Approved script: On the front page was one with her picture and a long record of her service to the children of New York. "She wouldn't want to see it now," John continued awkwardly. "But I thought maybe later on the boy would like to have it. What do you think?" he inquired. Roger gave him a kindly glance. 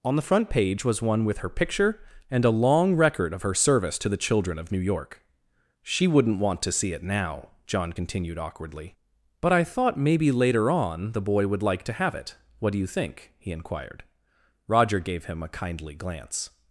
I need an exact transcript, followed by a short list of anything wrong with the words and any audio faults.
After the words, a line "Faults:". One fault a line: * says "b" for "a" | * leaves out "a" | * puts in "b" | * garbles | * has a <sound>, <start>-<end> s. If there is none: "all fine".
On the front page was one with her picture and a long record of her service to the children of New York. "She wouldn't want to see it now," John continued awkwardly. "But I thought maybe later on the boy would like to have it. What do you think?" he inquired. Roger gave him a kindly glance.
Faults:
all fine